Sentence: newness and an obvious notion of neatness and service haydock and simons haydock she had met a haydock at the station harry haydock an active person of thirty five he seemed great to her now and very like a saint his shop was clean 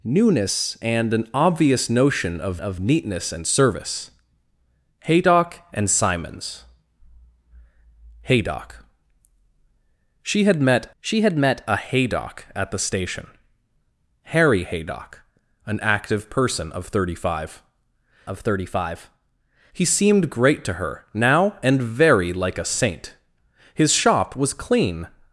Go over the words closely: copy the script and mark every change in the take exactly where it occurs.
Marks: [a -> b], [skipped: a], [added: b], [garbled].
newness and an obvious notion of [added: of] neatness and service haydock and simons haydock she had met [added: she had met] a haydock at the station harry haydock an active person of thirty five [added: of thirty five] he seemed great to her now and very like a saint his shop was clean